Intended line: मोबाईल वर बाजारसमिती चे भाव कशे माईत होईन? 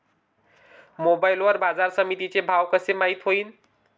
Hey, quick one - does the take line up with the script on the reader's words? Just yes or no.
yes